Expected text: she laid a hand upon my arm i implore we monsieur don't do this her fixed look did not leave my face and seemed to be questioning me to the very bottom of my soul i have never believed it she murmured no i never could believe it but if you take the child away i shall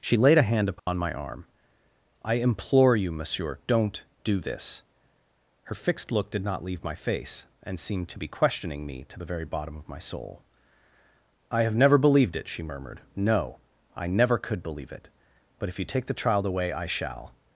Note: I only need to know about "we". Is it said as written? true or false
false